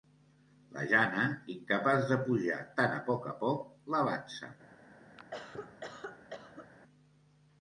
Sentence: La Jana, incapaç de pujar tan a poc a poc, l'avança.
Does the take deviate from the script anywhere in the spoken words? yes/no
no